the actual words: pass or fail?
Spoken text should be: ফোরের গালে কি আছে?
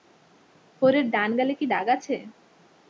fail